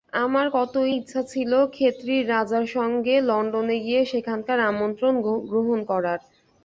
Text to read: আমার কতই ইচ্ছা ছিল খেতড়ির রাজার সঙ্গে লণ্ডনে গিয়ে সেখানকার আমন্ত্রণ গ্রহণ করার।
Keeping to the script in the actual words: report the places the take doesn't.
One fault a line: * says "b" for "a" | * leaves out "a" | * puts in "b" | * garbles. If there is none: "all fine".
all fine